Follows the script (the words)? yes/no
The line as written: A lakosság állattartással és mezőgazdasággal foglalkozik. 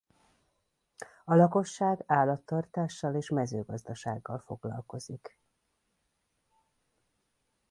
yes